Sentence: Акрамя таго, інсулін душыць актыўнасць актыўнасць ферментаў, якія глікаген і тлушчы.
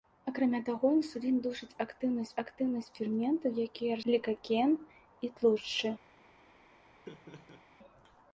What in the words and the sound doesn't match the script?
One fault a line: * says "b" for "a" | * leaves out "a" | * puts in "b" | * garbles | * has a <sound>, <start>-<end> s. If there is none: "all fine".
* has a laugh, 7.0-7.6 s